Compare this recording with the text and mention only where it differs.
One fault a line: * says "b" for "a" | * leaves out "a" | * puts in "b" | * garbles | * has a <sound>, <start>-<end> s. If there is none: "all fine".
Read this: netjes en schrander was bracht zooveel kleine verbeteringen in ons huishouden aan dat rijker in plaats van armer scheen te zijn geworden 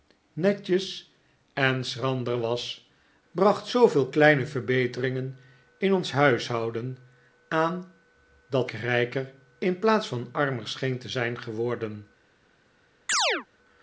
* has a chirp, 13.1-13.5 s